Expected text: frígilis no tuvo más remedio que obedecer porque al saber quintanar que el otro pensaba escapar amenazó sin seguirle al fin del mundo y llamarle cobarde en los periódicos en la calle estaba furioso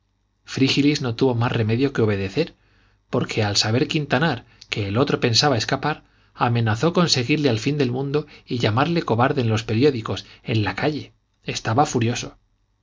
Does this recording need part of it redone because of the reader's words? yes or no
yes